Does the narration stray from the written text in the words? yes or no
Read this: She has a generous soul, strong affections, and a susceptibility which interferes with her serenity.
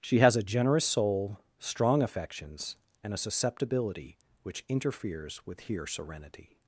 yes